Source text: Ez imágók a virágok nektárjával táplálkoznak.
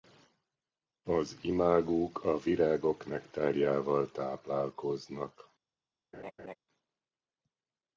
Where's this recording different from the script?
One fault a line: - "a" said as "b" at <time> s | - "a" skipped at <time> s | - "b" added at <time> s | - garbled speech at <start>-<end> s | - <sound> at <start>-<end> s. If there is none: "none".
- "Ez" said as "Az" at 1.0 s
- laugh at 6.1-6.6 s